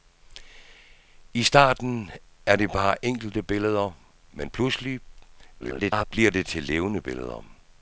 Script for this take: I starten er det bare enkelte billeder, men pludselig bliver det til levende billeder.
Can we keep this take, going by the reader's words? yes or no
no